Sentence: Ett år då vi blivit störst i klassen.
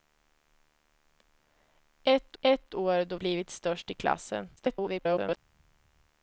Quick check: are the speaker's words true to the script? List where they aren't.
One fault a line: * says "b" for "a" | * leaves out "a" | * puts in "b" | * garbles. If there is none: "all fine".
* puts in "ett"
* leaves out "vi"
* garbles